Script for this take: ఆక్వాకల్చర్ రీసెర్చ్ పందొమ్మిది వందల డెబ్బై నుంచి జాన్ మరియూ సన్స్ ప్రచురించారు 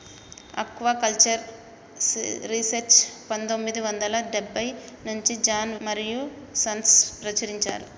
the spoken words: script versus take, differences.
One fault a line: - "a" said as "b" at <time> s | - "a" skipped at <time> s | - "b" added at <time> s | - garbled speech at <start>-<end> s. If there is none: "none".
none